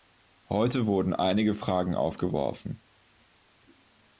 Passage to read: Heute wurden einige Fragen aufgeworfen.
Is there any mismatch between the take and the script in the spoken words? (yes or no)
no